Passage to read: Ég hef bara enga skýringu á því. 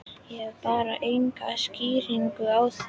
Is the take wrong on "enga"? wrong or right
right